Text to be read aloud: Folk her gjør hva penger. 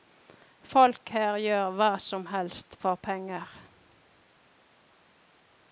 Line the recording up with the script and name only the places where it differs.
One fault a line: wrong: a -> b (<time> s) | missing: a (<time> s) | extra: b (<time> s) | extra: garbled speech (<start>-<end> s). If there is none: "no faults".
extra: som helst for (2.0 s)